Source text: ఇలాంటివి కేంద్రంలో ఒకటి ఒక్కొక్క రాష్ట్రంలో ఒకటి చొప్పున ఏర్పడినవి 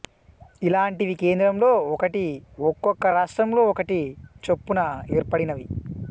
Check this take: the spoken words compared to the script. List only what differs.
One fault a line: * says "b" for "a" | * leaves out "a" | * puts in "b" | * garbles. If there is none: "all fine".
all fine